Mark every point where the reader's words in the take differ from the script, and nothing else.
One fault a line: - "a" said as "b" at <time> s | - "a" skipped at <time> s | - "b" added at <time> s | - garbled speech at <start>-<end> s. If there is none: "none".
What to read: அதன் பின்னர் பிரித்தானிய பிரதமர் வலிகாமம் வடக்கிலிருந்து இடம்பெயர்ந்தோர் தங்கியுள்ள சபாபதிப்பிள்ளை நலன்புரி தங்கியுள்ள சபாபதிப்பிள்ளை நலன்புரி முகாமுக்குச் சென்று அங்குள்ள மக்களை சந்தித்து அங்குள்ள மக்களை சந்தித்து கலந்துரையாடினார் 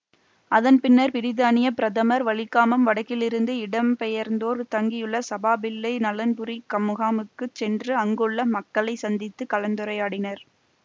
- "தங்கியுள்ள சபாபதிப்பிள்ளை நலன்புரி" skipped at 6.6 s
- "அங்குள்ள மக்களை சந்தித்து" skipped at 9.5 s